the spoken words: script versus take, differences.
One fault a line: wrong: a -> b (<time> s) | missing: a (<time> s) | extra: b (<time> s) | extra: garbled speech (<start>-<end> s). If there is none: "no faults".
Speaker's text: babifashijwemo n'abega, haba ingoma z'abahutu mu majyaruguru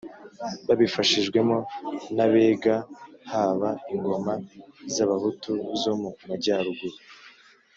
extra: zo (5.8 s)